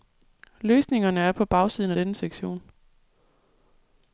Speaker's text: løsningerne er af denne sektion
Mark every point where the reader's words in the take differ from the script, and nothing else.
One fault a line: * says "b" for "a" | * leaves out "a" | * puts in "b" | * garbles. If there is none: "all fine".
* puts in "på bagsiden"